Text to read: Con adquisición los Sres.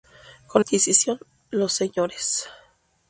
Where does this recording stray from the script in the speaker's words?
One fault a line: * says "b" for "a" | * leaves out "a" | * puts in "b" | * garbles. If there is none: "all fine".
all fine